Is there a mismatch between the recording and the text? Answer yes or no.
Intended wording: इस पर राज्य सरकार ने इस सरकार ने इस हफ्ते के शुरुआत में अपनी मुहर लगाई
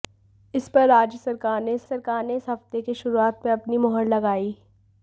no